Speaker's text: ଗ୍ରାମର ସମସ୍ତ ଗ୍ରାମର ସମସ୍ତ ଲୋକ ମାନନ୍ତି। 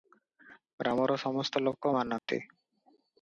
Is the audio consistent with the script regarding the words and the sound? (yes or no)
no